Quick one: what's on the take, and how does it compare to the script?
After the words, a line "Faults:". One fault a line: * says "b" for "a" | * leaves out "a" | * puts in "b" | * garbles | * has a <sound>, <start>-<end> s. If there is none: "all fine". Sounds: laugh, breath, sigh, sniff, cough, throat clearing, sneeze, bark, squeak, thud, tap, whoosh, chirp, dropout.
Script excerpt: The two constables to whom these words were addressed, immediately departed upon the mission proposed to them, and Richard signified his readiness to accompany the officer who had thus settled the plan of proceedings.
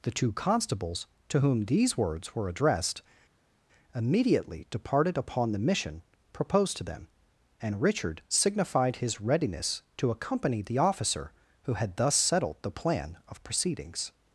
The two constables to whom these words were addressed, immediately departed upon the mission proposed to them, and Richard signified his readiness to accompany the officer who had thus settled the plan of proceedings.
Faults:
all fine